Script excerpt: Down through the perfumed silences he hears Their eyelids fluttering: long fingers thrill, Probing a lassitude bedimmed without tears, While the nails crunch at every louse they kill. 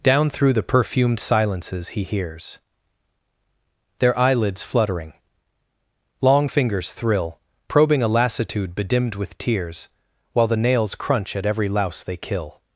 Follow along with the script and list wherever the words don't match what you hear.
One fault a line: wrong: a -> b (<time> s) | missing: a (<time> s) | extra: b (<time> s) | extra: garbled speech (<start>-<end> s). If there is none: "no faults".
wrong: without -> with (9.1 s)